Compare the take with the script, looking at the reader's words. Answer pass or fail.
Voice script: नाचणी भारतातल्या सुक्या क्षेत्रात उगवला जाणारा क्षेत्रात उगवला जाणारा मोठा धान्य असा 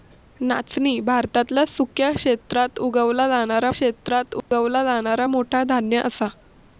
pass